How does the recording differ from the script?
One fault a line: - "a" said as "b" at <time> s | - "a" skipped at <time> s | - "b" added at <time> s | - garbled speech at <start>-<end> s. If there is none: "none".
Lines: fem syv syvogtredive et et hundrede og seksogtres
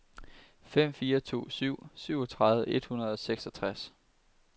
- "fire to" added at 0.9 s
- "et" skipped at 2.9 s